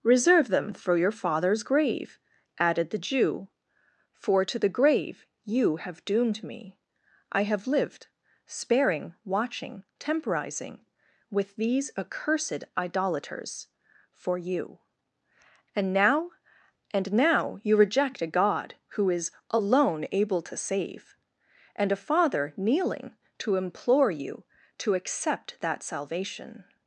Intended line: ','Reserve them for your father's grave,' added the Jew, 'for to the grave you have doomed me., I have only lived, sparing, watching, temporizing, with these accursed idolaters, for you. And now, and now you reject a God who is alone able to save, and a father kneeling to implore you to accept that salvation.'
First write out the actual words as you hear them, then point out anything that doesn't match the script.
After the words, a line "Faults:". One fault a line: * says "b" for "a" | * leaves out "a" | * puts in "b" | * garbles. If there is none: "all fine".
','Reserve them for your father's grave,' added the Jew, 'for to the grave you have doomed me., I have lived, sparing, watching, temporizing, with these accursed idolaters, for you. And now, and now you reject a God who is alone able to save, and a father kneeling to implore you to accept that salvation.'
Faults:
* leaves out "only"